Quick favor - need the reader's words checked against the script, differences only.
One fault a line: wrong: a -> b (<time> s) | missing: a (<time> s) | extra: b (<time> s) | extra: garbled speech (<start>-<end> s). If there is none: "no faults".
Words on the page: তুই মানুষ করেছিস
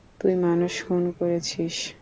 extra: খুন (0.8 s)